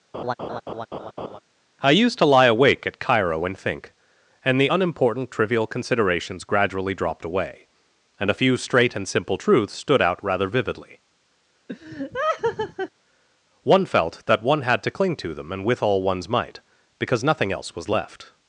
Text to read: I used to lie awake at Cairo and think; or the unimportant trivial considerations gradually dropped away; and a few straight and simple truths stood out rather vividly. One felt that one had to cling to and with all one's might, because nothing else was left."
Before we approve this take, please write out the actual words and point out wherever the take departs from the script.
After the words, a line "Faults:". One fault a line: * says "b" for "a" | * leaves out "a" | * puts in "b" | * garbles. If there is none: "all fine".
I used to lie awake at Cairo and think; and the unimportant trivial considerations gradually dropped away; and a few straight and simple truths stood out rather vividly. One felt that one had to cling to them and with all one's might, because nothing else was left."
Faults:
* says "and" for "or"
* puts in "them"